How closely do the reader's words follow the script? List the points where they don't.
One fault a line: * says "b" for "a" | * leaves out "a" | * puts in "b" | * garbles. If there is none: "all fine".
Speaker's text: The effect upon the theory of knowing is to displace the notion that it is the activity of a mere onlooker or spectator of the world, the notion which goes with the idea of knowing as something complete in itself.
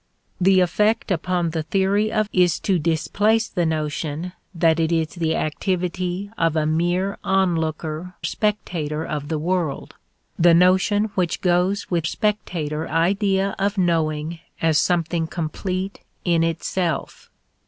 * leaves out "knowing"
* leaves out "or"
* says "spectator" for "the"